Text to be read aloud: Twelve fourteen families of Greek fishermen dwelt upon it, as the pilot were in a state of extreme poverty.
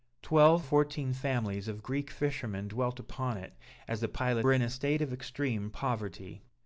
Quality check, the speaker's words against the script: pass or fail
pass